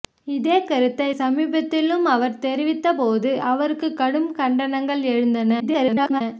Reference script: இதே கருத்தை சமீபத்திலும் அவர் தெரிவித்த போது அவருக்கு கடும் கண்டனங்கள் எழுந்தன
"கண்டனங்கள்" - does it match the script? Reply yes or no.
yes